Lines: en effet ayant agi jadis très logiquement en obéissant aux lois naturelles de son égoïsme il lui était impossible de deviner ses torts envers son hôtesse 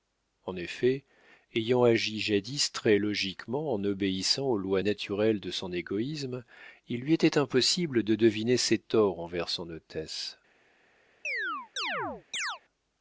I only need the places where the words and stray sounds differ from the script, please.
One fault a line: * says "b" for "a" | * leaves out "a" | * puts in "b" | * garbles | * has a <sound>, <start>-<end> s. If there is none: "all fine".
* has a chirp, 11.2-12.6 s